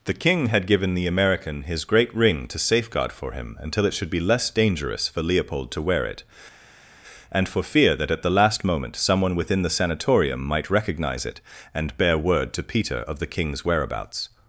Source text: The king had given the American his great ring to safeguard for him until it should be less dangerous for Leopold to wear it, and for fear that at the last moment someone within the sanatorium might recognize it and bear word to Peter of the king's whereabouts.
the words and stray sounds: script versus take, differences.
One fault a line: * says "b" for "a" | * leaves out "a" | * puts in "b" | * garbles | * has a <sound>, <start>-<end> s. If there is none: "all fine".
all fine